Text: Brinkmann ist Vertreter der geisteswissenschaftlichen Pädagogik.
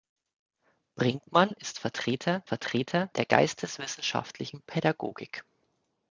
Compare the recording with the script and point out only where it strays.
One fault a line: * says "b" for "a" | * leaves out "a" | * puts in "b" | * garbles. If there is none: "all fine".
* puts in "Vertreter"